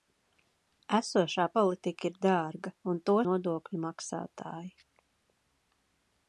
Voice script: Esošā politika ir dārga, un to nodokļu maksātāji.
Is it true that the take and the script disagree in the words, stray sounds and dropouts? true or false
false